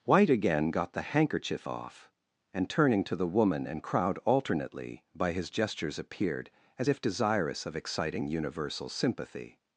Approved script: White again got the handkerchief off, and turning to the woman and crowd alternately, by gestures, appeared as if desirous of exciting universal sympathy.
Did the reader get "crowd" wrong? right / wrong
right